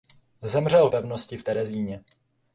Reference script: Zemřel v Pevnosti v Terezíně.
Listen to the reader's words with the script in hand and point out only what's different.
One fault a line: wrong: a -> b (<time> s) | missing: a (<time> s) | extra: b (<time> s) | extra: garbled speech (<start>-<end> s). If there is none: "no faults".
no faults